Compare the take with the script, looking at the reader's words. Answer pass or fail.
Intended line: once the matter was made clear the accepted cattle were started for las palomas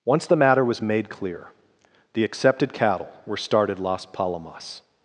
fail